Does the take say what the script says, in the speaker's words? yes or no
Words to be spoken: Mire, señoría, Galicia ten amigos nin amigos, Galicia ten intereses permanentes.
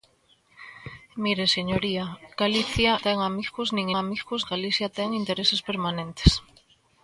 yes